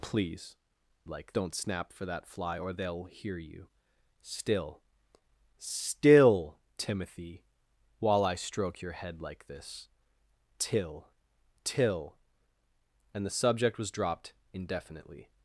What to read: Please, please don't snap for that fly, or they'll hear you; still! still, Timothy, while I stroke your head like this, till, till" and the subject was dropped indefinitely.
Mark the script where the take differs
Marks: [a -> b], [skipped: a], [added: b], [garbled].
Please, [please -> like] don't snap for that fly, or they'll hear you; still! still, Timothy, while I stroke your head like this, till, till" and the subject was dropped indefinitely.